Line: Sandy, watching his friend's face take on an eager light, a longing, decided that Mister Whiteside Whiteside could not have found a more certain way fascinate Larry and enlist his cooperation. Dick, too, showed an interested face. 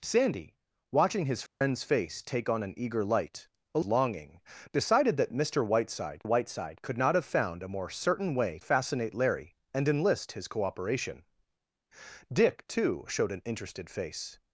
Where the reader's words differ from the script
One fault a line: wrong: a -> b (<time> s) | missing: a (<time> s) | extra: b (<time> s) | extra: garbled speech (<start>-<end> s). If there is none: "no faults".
no faults